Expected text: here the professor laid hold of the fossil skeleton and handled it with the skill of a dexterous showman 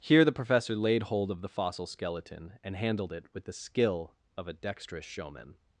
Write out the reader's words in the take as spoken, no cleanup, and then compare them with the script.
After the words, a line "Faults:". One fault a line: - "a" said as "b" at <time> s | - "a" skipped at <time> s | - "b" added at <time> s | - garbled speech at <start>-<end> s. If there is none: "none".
here the professor laid hold of the fossil skeleton and handled it with the skill of a dexterous showman
Faults:
none